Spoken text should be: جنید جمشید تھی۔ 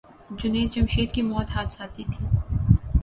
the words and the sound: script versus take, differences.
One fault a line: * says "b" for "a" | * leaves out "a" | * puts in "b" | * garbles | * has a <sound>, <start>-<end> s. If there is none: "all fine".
* puts in "کی موت حادثاتی"